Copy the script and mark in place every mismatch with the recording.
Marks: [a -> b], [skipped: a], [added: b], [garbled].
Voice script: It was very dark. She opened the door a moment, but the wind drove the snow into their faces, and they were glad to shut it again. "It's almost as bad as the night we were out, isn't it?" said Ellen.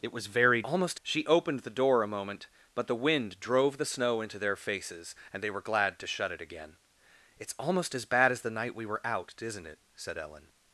It was very [dark. -> almost] She opened the door a moment, but the wind drove the snow into their faces, and they were glad to shut it again. "It's almost as bad as the night we were out, isn't it?" said Ellen.